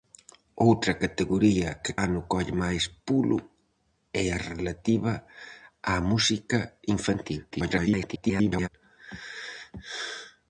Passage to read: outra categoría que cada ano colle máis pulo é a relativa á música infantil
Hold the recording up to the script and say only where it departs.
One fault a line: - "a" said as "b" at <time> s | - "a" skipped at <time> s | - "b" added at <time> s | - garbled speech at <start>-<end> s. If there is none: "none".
- "cada" skipped at 1.9 s
- garbled speech at 7.5-8.7 s